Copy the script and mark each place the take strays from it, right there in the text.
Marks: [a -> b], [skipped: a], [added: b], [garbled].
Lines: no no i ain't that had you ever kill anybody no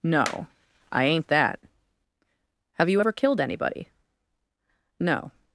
no [skipped: no] i ain't that [had -> have] you ever [kill -> killed] anybody no